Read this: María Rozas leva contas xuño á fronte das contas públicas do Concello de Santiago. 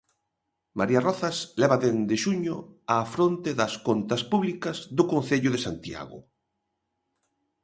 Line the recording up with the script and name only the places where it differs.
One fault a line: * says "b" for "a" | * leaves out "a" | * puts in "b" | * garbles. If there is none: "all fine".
* says "dende" for "contas"